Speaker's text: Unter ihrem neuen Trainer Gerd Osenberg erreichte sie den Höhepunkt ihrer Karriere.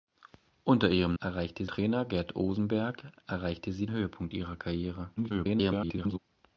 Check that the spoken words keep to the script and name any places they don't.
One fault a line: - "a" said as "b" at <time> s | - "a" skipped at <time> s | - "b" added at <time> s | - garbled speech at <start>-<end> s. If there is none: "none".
- "neuen" said as "erreichte" at 1.2 s
- "den" skipped at 3.9 s
- garbled speech at 5.2-6.2 s